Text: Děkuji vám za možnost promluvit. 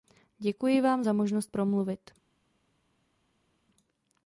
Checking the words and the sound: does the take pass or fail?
pass